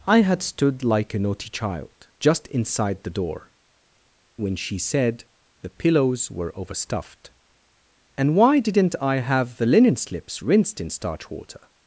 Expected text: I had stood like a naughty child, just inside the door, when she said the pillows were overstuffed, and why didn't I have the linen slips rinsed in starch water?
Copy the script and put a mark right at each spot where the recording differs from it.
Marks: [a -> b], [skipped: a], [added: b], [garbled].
I had stood like a naughty child, just inside the door, when she said the pillows were overstuffed, and why didn't I have the linen slips rinsed in starch water?